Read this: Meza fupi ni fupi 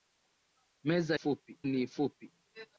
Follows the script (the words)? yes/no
yes